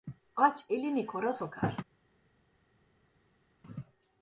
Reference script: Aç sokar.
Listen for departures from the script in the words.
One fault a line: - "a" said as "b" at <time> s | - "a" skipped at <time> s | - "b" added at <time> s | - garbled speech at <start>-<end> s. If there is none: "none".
- "elini kora" added at 0.7 s